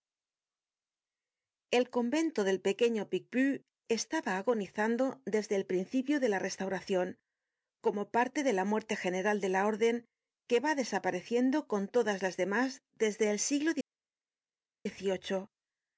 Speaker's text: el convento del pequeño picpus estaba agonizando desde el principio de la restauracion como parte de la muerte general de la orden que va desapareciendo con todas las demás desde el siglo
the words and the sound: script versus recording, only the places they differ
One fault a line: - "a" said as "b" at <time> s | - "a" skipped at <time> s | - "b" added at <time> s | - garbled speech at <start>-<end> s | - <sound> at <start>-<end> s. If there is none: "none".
none